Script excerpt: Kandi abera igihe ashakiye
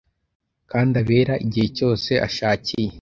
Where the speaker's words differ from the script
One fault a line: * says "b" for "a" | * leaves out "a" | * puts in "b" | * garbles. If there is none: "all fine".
* puts in "cyose"